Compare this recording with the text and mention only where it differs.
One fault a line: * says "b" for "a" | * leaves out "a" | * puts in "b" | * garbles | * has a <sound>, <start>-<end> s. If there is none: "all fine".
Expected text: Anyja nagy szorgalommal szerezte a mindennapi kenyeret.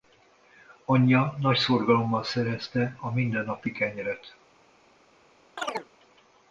* has a chirp, 5.6-5.9 s